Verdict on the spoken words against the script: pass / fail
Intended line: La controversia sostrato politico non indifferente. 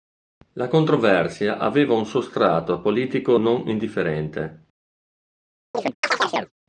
fail